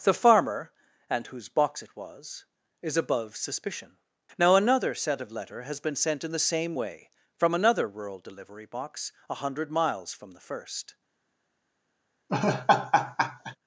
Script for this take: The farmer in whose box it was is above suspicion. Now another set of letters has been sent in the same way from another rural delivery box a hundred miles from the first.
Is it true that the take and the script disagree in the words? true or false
true